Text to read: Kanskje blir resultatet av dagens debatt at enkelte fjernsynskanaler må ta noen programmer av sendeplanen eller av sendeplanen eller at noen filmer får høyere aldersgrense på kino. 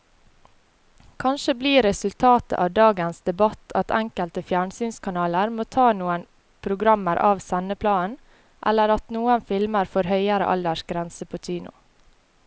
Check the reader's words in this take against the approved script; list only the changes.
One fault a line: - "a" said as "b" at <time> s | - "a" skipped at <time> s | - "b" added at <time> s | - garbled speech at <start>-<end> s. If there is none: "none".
- "av sendeplanen eller" skipped at 8.9 s